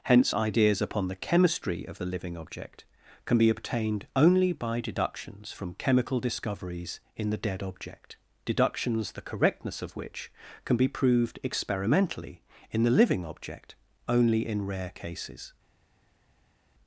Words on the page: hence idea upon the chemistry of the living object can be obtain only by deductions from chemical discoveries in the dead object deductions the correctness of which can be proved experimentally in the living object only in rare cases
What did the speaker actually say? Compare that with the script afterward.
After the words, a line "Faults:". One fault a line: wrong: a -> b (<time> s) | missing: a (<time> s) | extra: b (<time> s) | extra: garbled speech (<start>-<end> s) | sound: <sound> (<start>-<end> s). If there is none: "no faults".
hence ideas upon the chemistry of the living object can be obtained only by deductions from chemical discoveries in the dead object deductions the correctness of which can be proved experimentally in the living object only in rare cases
Faults:
wrong: idea -> ideas (0.3 s)
wrong: obtain -> obtained (3.5 s)